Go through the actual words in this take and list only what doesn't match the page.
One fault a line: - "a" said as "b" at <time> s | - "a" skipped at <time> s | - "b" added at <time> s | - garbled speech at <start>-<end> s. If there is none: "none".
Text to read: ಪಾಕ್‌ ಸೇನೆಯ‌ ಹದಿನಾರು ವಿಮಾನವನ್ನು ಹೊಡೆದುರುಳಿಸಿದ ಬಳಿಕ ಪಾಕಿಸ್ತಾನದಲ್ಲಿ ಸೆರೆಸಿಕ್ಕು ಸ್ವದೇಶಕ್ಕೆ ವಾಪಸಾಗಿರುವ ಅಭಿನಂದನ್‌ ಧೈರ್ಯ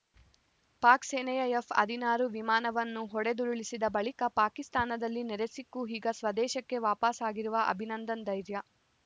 - "ಎಫ್" added at 1.5 s
- "ಈಗ" added at 5.9 s